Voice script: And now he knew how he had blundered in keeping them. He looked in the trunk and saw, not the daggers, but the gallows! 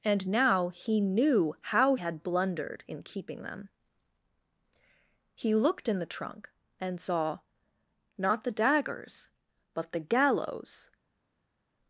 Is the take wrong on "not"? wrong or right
right